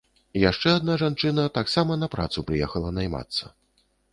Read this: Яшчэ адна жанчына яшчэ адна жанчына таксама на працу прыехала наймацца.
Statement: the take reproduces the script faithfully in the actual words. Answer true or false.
false